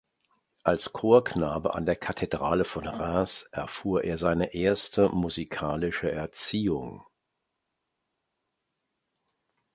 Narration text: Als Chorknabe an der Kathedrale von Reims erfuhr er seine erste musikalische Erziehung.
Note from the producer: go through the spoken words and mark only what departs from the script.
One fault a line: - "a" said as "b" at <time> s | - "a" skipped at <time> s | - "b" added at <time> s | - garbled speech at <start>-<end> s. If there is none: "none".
none